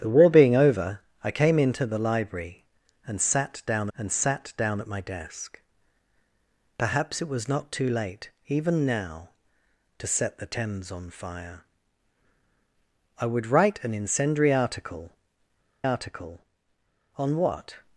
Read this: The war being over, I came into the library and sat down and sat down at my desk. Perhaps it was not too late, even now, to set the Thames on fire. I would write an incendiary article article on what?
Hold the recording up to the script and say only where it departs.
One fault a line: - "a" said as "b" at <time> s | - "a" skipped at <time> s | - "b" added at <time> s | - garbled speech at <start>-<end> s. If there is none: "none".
none